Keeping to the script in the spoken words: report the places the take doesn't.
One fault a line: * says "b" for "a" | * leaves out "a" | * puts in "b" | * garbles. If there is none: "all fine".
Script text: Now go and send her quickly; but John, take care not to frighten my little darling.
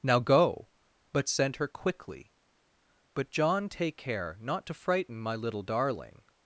* says "but" for "and"